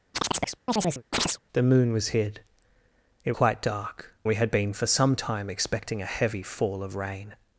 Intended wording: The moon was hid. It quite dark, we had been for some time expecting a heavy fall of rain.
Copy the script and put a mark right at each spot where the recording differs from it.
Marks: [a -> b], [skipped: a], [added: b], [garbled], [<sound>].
[chirp] The moon was hid. It quite dark, we had been for some time expecting a heavy fall of rain.